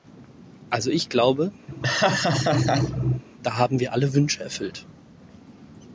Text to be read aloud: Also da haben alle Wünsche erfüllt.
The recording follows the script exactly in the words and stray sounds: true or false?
false